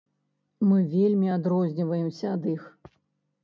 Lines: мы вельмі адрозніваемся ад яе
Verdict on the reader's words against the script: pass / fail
fail